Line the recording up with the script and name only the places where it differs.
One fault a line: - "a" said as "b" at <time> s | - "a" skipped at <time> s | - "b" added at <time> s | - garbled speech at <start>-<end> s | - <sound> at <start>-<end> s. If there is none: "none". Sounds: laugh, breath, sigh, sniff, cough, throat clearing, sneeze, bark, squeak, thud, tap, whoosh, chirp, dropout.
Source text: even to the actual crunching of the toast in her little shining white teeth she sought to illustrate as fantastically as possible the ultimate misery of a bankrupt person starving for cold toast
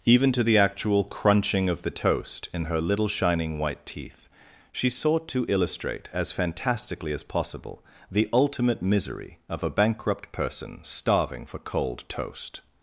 none